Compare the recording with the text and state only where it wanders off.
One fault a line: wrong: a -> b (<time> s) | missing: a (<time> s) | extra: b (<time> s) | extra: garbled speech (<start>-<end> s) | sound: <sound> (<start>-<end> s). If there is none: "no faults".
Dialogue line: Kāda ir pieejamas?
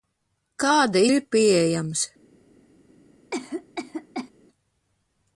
sound: cough (3.3-4.3 s)